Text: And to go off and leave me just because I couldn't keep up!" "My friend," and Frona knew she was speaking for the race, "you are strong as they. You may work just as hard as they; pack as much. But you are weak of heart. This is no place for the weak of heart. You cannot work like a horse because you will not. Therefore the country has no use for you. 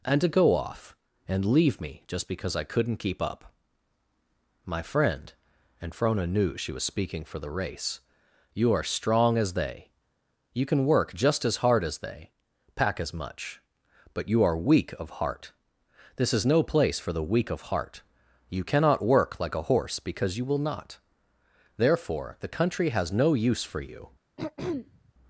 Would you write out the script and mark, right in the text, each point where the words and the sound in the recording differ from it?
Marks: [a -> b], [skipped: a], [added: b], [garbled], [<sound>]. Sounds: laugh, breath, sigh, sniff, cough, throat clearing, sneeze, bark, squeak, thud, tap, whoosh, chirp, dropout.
And to go off and leave me just because I couldn't keep up!" "My friend," and Frona knew she was speaking for the race, "you are strong as they. You [may -> can] work just as hard as they; pack as much. But you are weak of heart. This is no place for the weak of heart. You cannot work like a horse because you will not. Therefore the country has no use for you. [throat clearing]